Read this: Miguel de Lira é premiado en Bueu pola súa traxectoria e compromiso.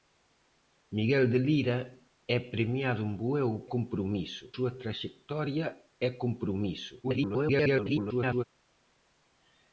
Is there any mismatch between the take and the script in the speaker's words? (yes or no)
yes